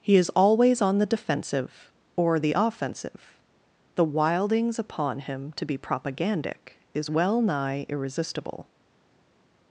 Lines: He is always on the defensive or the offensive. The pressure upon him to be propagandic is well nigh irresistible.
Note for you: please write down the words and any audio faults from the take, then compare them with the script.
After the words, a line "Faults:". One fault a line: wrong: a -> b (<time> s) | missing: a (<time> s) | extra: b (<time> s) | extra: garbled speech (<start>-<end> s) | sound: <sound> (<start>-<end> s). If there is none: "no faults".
He is always on the defensive or the offensive. The wildings upon him to be propagandic is well nigh irresistible.
Faults:
wrong: pressure -> wildings (4.0 s)